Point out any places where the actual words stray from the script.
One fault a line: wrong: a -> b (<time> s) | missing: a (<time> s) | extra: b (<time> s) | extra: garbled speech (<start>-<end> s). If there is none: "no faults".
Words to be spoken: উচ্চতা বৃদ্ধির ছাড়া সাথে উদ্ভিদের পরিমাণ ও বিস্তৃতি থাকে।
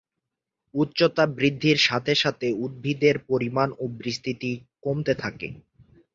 wrong: ছাড়া -> সাথে (1.9 s)
extra: কমতে (4.8 s)